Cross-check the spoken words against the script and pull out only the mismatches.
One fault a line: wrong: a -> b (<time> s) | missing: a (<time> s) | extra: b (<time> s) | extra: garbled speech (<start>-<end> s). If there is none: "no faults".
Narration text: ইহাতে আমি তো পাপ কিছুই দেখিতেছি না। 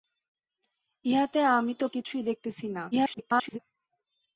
missing: পাপ (1.9 s)
extra: garbled speech (2.9-3.6 s)